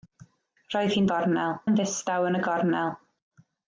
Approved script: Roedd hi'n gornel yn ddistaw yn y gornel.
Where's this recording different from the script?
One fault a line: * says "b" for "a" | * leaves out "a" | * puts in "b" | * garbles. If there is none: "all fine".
all fine